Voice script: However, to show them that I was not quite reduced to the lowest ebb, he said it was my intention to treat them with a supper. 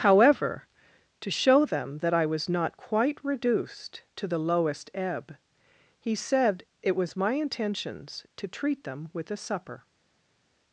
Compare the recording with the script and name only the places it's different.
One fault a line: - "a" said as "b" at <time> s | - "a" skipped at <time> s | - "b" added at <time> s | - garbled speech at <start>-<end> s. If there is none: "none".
- "intention" said as "intentions" at 7.3 s